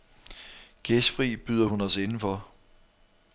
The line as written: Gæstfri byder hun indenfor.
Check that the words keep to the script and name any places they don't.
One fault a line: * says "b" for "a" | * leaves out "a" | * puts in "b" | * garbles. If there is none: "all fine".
* puts in "os"